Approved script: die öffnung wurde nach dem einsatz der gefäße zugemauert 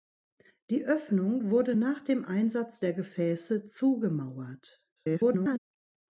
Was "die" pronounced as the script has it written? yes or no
yes